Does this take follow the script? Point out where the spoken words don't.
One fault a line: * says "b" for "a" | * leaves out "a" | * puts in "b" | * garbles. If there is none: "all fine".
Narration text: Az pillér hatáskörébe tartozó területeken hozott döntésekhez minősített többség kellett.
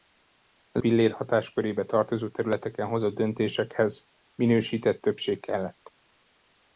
all fine